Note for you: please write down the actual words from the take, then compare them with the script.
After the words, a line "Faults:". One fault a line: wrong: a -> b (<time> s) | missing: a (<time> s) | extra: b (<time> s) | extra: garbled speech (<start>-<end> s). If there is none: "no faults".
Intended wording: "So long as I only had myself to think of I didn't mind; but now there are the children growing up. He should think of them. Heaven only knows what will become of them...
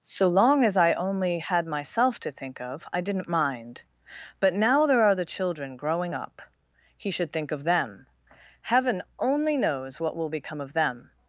"So long as I only had myself to think of I didn't mind; but now there are the children growing up. He should think of them. Heaven only knows what will become of them...
Faults:
no faults